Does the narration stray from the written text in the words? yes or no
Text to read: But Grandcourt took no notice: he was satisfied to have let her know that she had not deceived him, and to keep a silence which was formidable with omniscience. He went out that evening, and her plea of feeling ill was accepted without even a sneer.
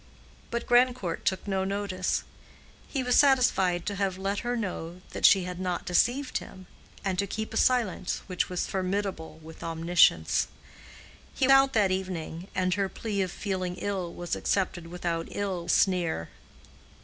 yes